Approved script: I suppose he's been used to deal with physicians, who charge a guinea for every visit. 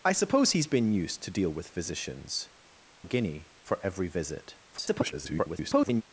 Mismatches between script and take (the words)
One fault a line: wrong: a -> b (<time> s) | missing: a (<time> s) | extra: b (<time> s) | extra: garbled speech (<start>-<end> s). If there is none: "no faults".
missing: who charge (2.5 s)
extra: garbled speech (4.7-6.0 s)